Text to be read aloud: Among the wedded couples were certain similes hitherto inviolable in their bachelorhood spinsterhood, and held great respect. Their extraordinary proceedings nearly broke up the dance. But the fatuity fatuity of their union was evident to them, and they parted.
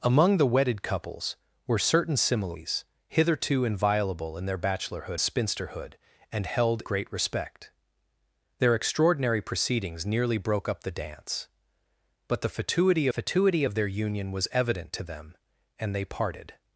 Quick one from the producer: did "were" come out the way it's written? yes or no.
yes